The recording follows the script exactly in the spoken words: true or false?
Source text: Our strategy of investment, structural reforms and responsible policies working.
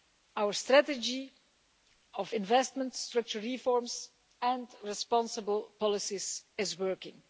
false